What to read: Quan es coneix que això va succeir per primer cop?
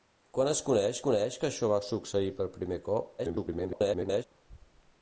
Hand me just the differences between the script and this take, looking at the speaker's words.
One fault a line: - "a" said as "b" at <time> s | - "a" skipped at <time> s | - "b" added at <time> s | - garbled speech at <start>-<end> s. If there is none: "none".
- "coneix" added at 1.1 s
- garbled speech at 3.2-4.2 s